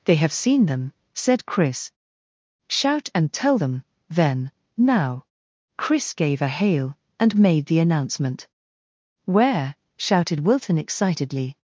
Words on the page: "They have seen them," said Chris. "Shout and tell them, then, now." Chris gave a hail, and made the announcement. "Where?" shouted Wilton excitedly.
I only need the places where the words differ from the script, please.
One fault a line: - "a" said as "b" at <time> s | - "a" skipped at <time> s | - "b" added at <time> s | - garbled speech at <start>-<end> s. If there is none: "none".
none